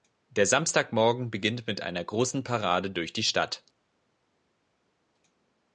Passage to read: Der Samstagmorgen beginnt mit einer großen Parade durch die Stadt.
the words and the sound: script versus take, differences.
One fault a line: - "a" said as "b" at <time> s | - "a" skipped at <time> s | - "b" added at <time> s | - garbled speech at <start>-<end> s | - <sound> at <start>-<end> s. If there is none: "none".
none